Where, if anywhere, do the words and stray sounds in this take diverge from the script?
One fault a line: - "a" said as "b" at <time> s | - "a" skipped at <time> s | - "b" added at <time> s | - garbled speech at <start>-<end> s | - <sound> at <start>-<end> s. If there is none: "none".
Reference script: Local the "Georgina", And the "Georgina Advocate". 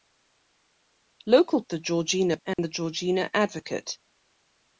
- dropout at 2.5-2.6 s